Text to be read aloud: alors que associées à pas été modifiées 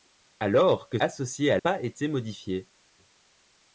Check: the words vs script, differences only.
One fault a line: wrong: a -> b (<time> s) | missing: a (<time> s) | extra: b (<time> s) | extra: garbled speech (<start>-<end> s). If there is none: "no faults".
no faults